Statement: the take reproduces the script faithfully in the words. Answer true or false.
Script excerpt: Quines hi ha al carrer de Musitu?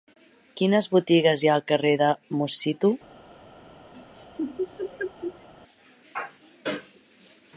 false